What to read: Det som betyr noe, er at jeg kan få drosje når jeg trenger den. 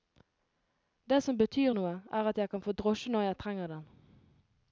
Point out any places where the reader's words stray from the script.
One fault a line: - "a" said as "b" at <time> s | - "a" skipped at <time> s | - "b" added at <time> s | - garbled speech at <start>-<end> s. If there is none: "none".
none